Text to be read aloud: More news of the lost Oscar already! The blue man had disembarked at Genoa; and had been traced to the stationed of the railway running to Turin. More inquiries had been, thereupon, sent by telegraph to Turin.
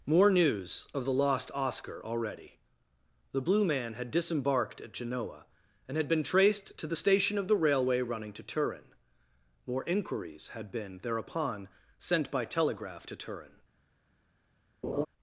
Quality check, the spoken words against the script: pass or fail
fail